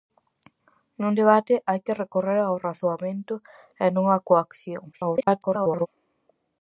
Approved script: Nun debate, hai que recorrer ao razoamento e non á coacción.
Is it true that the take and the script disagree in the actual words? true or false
true